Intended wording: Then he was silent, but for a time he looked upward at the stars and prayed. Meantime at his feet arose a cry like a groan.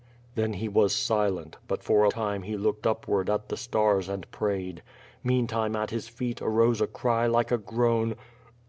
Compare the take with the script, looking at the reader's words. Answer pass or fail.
pass